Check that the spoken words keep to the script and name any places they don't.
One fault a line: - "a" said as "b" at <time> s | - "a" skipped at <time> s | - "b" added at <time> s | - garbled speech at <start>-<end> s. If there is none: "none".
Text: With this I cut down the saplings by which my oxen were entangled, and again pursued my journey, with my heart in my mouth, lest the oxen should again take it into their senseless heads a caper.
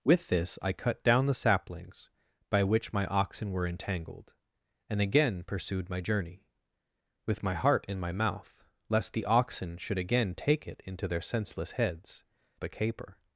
none